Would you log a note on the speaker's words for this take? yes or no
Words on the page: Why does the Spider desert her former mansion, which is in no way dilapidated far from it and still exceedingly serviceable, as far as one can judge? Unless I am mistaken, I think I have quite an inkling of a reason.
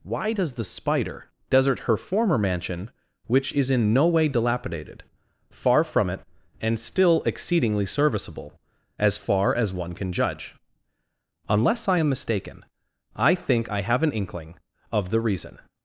yes